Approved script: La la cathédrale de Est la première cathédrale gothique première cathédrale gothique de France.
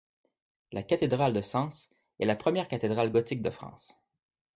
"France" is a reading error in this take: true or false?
false